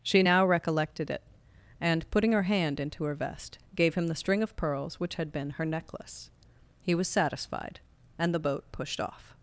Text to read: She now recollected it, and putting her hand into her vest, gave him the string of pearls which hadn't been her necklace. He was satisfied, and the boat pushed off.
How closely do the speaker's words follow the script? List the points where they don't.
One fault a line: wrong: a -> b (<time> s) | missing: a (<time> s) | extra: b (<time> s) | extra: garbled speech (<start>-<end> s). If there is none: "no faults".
wrong: hadn't -> had (5.1 s)